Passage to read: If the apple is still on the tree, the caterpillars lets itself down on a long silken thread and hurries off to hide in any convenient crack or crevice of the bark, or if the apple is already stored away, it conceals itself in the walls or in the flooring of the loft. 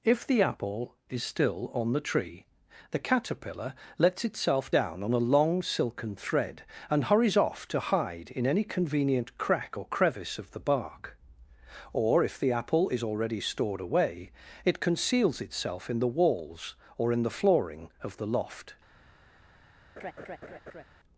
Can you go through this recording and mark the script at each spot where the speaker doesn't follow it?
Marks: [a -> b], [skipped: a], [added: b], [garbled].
If the apple is still on the tree, the [caterpillars -> caterpillar] lets itself down on a long silken thread and hurries off to hide in any convenient crack or crevice of the bark, or if the apple is already stored away, it conceals itself in the walls or in the flooring of the loft.